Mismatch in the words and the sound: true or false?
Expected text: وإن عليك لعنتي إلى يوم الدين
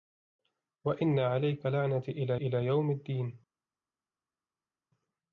true